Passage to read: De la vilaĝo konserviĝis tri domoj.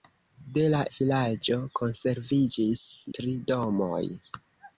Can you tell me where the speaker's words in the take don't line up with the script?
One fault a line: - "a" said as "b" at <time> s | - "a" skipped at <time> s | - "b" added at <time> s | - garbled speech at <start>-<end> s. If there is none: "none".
none